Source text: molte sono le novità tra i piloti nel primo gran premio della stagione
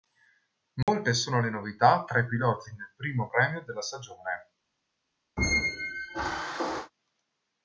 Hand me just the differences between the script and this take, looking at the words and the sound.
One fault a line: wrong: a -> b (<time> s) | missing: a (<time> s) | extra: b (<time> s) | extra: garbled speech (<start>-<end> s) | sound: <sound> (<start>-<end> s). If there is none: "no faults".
sound: dropout (0.8-0.9 s)
missing: gran (3.3 s)
sound: squeak (5.4-6.9 s)